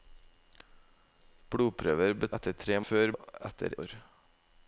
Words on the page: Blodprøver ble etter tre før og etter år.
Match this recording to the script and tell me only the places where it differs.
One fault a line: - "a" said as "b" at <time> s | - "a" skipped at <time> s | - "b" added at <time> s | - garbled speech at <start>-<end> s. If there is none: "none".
none